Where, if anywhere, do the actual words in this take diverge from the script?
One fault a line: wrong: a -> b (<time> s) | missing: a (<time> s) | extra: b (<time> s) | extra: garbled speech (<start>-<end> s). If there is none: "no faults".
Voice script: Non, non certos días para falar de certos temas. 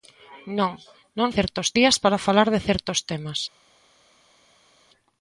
no faults